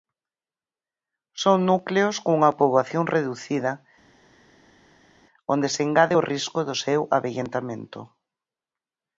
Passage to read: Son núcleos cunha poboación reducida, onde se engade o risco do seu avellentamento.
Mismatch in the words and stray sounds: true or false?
false